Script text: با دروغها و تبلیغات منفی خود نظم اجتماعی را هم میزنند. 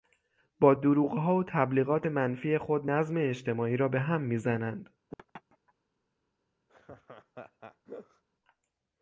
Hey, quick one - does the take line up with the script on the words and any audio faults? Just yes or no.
no